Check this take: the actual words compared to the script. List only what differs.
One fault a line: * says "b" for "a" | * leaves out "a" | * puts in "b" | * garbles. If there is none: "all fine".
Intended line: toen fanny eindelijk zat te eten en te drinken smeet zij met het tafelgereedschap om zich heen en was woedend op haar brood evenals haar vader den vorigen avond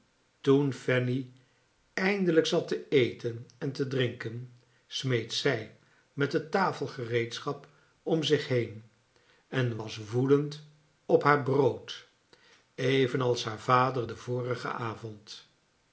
all fine